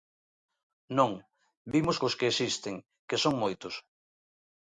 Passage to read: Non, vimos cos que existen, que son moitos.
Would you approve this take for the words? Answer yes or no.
yes